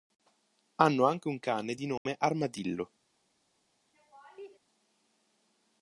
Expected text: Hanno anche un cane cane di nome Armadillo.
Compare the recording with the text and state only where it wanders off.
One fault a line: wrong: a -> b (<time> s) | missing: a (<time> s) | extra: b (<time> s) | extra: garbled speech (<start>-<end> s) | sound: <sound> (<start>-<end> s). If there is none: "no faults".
missing: cane (1.8 s)
sound: dropout (2.0-2.1 s)
sound: laugh (3.9-4.6 s)